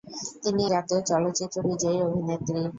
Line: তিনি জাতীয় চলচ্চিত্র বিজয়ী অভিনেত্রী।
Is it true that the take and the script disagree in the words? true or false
false